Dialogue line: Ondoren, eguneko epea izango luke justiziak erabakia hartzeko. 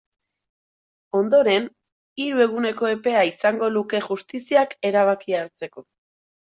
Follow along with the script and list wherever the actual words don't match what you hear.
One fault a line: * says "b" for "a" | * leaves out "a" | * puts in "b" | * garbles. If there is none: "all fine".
* puts in "hiru"